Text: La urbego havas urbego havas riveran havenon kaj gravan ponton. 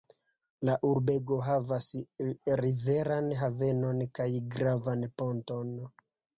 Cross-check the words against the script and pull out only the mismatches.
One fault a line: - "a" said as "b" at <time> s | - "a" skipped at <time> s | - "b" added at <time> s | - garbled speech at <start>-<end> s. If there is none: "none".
- "urbego havas" skipped at 1.9 s